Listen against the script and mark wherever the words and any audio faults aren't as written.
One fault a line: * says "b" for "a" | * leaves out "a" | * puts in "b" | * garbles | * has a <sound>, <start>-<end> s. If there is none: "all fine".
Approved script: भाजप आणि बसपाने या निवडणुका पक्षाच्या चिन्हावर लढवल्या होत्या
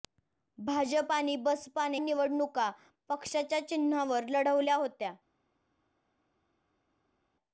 * leaves out "या"